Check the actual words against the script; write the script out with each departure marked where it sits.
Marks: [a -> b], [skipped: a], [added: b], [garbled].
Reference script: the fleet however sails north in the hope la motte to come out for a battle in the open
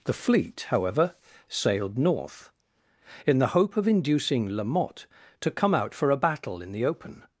the fleet however [sails -> sailed] north in the hope [added: of inducing] la motte to come out for a battle in the open